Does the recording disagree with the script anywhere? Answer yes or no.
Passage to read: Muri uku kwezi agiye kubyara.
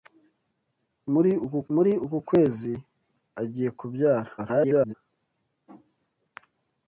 yes